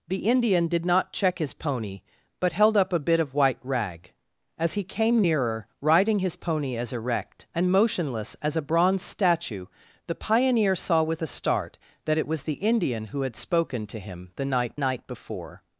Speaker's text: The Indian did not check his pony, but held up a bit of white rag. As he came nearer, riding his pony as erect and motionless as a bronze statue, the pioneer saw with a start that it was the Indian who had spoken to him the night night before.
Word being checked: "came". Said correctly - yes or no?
yes